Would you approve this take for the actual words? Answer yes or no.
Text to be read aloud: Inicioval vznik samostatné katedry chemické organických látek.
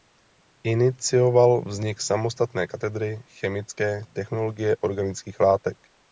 no